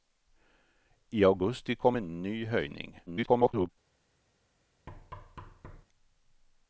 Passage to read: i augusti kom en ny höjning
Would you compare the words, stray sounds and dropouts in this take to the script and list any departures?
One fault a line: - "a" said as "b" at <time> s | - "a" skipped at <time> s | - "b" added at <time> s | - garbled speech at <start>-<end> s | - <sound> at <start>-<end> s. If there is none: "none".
- garbled speech at 3.1-3.7 s
- thud at 4.9-5.9 s